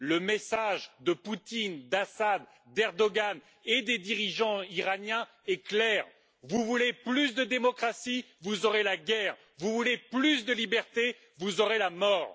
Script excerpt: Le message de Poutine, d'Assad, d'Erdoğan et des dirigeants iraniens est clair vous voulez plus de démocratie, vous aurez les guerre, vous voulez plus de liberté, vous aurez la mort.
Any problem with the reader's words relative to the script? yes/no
yes